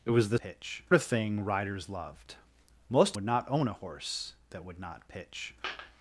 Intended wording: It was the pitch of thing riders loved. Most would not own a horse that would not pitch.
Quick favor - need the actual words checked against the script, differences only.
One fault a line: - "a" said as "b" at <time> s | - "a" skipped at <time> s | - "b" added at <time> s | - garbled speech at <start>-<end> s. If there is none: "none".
none